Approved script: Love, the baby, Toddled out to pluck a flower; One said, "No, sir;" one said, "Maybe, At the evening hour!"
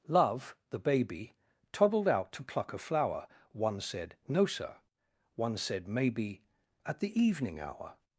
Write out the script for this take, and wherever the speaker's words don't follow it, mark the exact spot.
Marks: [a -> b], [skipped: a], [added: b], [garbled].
Love, the baby, Toddled out to pluck a flower; One said, "No, sir;" one said, "Maybe, At the evening hour!"